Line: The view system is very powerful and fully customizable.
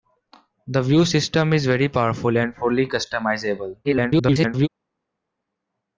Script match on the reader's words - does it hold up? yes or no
no